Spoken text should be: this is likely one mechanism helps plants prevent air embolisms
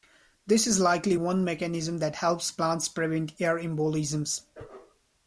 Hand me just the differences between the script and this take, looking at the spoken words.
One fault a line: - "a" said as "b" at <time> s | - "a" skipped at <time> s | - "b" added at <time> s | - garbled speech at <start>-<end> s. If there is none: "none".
- "that" added at 2.0 s